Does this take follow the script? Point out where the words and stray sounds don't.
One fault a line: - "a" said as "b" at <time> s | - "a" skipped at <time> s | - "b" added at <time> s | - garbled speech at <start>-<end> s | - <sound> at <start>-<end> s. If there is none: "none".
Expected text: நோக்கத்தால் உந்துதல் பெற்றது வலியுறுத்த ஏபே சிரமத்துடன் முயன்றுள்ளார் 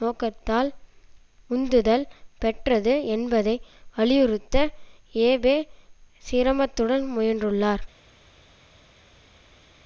- "என்பதை" added at 3.1 s